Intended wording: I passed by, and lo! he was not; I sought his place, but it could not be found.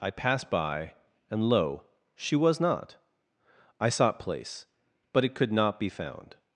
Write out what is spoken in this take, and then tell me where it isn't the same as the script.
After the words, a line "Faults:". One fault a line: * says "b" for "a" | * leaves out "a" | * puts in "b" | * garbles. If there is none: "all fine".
I passed by, and lo! she was not; I sought place, but it could not be found.
Faults:
* says "she" for "he"
* leaves out "his"